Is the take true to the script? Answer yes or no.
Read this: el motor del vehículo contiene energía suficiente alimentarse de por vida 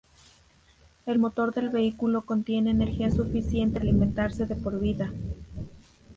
yes